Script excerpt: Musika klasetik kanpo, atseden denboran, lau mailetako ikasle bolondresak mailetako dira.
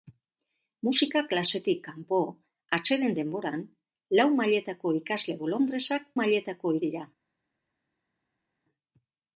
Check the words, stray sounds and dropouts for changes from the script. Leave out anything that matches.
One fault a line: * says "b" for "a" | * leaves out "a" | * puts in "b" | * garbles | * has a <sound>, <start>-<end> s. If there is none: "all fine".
all fine